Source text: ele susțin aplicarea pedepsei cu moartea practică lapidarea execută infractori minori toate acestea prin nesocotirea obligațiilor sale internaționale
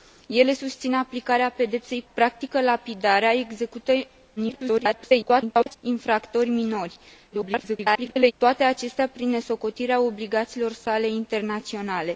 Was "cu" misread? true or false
true